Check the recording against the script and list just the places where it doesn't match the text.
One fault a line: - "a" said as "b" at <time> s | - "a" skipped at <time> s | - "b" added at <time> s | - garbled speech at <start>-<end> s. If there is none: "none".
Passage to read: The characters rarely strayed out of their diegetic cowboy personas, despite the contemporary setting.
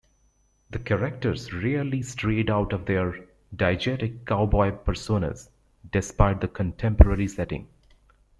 none